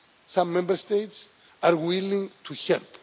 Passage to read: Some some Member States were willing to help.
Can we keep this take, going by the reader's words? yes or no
no